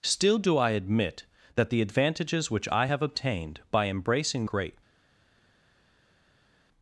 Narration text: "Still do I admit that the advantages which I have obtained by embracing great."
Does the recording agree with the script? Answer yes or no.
yes